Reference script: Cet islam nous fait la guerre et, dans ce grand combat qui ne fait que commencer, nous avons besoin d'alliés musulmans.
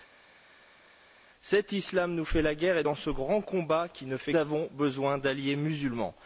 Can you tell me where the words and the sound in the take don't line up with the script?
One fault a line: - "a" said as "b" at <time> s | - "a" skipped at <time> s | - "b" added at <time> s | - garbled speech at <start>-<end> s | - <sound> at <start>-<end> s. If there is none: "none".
- "que commencer nous" skipped at 4.3 s